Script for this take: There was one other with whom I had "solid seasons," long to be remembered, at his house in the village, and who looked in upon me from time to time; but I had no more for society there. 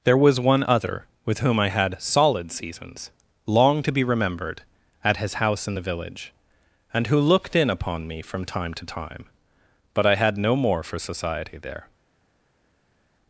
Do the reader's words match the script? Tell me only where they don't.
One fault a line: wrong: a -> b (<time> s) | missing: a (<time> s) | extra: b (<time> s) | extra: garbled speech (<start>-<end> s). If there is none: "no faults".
no faults